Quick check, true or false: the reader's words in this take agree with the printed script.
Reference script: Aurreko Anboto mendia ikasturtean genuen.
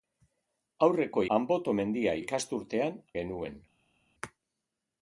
true